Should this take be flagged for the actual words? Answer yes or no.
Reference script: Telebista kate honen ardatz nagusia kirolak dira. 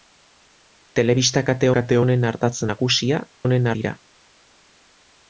yes